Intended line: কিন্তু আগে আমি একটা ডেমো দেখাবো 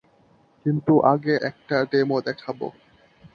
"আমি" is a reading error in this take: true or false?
true